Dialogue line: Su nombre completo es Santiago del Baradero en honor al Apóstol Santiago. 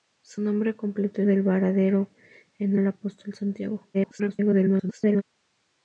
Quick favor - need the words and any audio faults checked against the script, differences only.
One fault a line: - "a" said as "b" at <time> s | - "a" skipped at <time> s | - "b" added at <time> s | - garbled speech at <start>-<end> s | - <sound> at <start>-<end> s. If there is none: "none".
- "es Santiago" skipped at 1.2 s
- "honor" skipped at 2.8 s
- garbled speech at 3.9-5.2 s